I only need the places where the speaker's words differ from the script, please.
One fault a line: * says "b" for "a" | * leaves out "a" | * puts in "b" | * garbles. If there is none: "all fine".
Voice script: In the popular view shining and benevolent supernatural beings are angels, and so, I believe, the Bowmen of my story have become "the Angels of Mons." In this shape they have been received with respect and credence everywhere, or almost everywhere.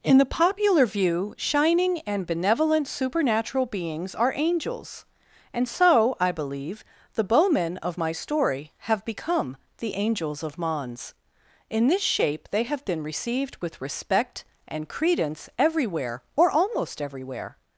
all fine